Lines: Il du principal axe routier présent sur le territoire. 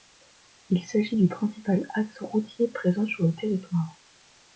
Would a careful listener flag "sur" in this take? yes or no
no